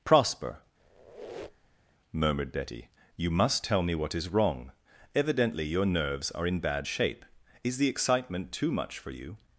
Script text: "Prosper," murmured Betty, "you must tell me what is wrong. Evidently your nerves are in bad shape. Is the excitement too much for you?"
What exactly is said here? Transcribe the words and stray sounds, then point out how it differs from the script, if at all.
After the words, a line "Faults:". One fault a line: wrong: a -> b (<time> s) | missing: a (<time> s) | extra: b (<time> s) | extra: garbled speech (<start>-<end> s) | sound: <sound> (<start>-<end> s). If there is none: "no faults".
"Prosper," murmured Betty, "you must tell me what is wrong. Evidently your nerves are in bad shape. Is the excitement too much for you?"
Faults:
sound: squeak (0.8-1.9 s)